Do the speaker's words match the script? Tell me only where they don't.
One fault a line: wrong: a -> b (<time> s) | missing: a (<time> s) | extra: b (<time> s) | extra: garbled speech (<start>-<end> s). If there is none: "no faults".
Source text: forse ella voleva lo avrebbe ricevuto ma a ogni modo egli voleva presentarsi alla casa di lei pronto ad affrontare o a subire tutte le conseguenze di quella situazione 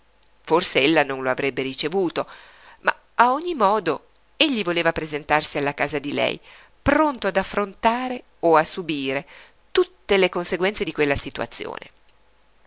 wrong: voleva -> non (1.0 s)